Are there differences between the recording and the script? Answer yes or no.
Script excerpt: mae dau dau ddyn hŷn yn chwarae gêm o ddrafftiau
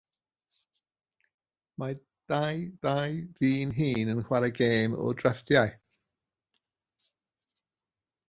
no